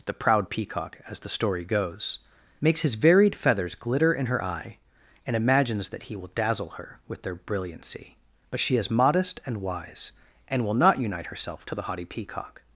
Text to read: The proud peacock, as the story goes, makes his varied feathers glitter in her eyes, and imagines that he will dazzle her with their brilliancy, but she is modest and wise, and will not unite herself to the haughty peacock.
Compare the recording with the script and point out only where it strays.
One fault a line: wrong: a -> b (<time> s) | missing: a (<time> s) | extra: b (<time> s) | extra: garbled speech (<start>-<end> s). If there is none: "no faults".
wrong: eyes -> eye (4.4 s)